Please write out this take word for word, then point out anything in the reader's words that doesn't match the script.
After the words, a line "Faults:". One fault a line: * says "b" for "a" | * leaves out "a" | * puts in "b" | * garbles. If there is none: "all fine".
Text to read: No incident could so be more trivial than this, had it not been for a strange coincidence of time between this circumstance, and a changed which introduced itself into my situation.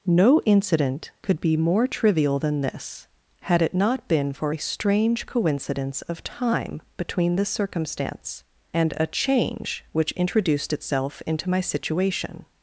No incident could be more trivial than this, had it not been for a strange coincidence of time between this circumstance, and a change which introduced itself into my situation.
Faults:
* leaves out "so"
* says "change" for "changed"